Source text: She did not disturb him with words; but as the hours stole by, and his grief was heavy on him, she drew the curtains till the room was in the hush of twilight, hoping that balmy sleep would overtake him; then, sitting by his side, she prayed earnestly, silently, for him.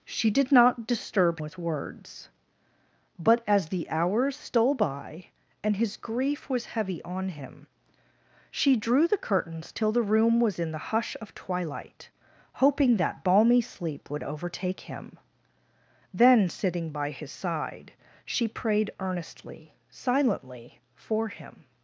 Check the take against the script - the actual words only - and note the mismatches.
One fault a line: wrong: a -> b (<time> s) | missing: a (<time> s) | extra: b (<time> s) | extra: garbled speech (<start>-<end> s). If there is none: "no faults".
missing: him (1.4 s)